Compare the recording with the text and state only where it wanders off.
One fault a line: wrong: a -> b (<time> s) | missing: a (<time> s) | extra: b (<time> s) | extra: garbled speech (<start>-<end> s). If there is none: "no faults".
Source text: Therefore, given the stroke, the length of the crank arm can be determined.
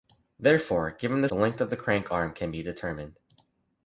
missing: stroke (1.3 s)